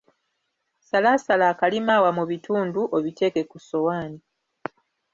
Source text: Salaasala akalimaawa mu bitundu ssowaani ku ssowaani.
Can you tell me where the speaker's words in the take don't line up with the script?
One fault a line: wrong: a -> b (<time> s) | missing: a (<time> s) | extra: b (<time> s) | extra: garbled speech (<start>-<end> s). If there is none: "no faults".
wrong: ssowaani -> obiteeke (3.0 s)